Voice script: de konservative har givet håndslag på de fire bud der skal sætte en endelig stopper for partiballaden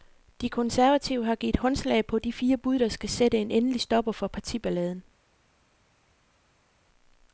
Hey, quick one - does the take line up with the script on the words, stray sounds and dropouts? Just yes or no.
yes